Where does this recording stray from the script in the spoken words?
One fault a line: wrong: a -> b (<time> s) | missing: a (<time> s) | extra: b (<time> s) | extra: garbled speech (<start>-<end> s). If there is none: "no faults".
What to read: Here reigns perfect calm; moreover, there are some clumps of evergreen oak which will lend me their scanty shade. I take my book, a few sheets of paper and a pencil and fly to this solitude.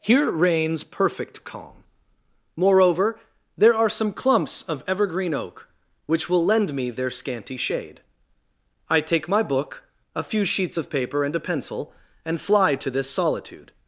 no faults